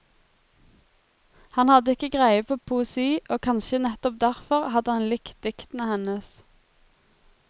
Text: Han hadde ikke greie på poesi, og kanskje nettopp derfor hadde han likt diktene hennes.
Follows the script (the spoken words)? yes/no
yes